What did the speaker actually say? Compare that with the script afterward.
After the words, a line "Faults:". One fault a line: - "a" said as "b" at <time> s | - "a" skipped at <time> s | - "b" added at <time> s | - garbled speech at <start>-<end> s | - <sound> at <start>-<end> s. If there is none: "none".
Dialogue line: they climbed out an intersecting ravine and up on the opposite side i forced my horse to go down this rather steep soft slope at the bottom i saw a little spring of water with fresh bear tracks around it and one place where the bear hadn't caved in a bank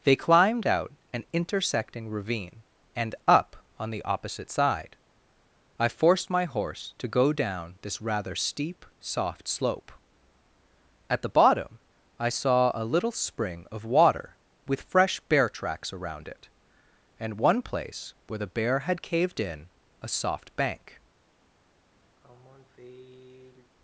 they climbed out an intersecting ravine and up on the opposite side i forced my horse to go down this rather steep soft slope at the bottom i saw a little spring of water with fresh bear tracks around it and one place where the bear had caved in a soft bank
Faults:
- "hadn't" said as "had" at 18.8 s
- "soft" added at 20.1 s
- sigh at 22.2-23.7 s